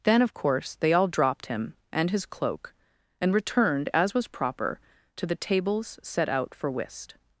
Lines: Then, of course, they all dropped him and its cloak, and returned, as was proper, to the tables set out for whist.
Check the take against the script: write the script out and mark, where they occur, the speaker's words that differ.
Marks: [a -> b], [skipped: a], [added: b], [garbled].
Then, of course, they all dropped him and [its -> his] cloak, and returned, as was proper, to the tables set out for whist.